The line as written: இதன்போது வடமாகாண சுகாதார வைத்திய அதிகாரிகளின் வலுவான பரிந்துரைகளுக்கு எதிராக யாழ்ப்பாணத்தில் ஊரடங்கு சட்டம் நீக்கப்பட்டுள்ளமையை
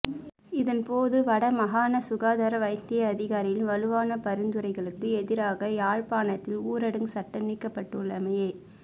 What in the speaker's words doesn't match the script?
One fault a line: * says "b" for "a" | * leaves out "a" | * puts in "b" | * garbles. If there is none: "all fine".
all fine